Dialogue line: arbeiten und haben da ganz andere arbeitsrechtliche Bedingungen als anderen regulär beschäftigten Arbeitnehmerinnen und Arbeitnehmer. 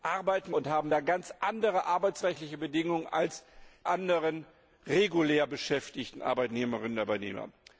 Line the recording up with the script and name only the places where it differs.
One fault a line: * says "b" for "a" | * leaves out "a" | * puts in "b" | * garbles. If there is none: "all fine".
all fine